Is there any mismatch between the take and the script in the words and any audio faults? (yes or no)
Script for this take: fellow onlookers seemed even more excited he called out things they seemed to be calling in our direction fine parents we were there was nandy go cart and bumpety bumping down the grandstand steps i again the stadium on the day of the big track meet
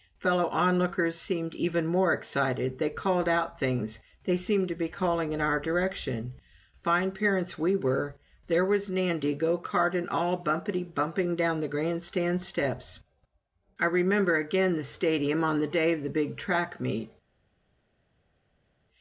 yes